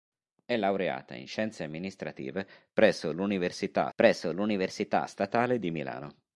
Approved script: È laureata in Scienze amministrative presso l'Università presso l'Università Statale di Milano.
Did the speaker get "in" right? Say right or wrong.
right